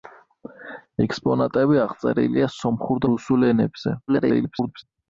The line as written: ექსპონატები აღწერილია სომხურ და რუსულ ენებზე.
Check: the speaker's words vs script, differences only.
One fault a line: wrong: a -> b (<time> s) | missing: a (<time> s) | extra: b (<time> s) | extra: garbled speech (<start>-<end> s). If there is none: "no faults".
missing: და (3.1 s)
extra: garbled speech (4.1-4.8 s)